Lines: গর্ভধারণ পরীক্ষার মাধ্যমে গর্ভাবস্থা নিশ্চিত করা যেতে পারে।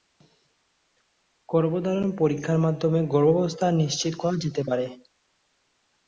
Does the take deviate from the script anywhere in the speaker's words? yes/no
no